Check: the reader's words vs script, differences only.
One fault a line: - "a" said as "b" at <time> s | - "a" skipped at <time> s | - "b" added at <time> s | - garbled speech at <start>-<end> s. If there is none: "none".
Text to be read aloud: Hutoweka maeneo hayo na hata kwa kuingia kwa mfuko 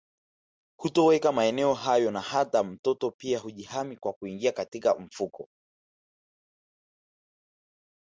- "mtoto pia hujihami" added at 2.6 s
- "kwa" said as "katika" at 4.5 s